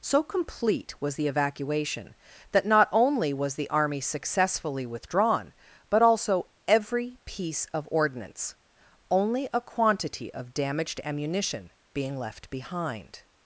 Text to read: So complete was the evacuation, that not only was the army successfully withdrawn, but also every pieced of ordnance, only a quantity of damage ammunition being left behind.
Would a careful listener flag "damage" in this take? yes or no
yes